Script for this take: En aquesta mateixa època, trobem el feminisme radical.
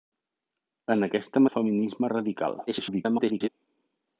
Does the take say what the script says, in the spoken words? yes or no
no